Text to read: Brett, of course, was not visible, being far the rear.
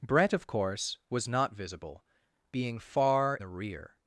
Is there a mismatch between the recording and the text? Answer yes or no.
no